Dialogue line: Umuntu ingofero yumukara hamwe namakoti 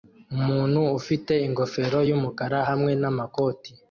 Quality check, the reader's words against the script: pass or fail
fail